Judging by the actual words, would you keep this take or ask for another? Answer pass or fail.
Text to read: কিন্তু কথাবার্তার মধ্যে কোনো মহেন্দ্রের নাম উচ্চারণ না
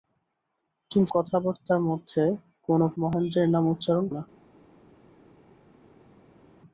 pass